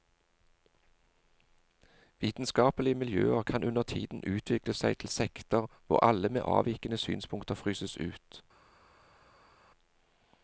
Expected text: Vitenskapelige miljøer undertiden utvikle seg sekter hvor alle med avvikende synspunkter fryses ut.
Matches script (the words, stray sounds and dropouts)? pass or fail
fail